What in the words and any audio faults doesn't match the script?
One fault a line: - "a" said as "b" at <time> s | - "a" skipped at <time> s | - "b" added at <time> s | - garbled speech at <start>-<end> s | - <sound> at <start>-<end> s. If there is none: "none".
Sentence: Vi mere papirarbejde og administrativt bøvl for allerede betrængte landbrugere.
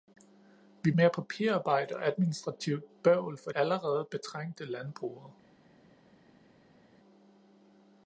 none